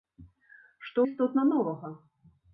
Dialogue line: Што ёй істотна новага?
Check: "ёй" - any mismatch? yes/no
no